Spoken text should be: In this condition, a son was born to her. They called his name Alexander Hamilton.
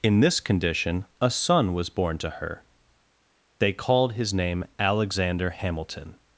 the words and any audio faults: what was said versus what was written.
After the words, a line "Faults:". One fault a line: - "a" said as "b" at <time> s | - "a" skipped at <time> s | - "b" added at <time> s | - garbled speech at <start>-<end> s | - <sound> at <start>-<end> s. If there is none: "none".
In this condition, a son was born to her. They called his name Alexander Hamilton.
Faults:
none